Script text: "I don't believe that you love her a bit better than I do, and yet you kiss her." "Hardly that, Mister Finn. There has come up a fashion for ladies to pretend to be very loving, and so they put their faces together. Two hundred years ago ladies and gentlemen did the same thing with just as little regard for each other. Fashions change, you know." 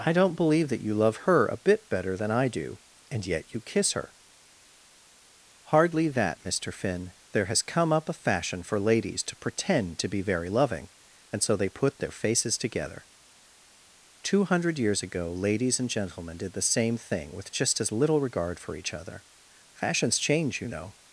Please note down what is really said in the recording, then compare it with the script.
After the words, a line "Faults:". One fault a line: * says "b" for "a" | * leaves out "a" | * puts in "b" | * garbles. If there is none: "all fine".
"I don't believe that you love her a bit better than I do, and yet you kiss her." "Hardly that, Mister Finn. There has come up a fashion for ladies to pretend to be very loving, and so they put their faces together. Two hundred years ago ladies and gentlemen did the same thing with just as little regard for each other. Fashions change, you know."
Faults:
all fine